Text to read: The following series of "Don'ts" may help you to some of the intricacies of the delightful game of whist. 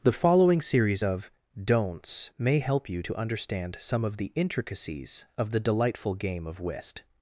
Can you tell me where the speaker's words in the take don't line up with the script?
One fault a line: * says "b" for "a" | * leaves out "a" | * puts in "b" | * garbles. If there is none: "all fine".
* puts in "understand"